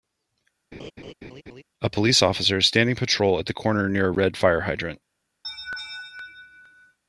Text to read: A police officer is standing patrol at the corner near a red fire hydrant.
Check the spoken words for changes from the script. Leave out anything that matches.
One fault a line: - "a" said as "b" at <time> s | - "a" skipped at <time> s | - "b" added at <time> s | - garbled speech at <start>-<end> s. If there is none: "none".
none